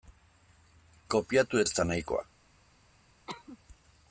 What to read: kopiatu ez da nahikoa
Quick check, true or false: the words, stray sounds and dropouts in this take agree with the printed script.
false